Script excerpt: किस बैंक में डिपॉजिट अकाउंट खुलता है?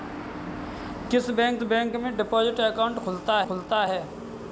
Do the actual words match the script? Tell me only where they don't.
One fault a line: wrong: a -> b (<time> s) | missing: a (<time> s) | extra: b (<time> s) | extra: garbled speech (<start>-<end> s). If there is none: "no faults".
extra: बैंक (1.6 s)
extra: खुलता (3.4 s)